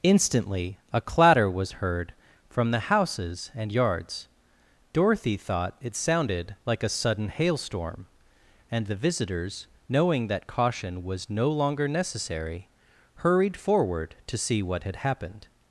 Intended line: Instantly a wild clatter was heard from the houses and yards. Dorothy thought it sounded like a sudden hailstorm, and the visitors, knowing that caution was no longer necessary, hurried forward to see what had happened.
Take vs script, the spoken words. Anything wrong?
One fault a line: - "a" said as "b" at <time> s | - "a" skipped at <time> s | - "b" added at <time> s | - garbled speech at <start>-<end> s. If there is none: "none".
- "wild" skipped at 1.0 s